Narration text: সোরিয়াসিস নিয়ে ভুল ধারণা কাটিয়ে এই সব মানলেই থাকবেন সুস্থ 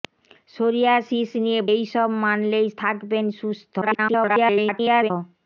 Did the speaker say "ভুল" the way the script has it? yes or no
no